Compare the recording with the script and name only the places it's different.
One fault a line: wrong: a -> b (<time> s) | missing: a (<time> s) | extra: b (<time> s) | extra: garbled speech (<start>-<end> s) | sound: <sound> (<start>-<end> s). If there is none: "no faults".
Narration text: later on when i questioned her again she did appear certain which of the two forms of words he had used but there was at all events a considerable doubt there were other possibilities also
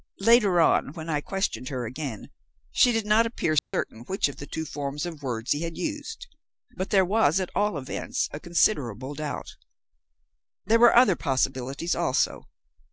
extra: not (3.0 s)
sound: dropout (3.6-3.7 s)